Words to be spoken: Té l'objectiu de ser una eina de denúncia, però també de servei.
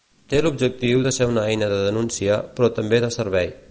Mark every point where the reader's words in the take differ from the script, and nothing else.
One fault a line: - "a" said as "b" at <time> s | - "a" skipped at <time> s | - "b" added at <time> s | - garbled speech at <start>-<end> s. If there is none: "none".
none